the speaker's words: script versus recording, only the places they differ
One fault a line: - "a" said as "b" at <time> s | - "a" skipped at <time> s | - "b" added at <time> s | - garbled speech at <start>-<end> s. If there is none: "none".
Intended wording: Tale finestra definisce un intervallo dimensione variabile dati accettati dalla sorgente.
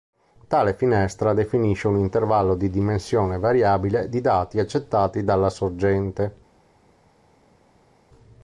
- "di" added at 2.5 s
- "di" added at 4.1 s